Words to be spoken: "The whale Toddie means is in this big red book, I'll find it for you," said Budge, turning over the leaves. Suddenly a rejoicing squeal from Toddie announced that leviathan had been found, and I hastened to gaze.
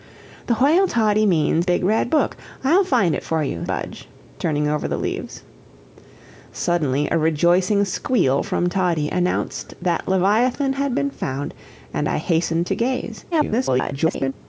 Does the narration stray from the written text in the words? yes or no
yes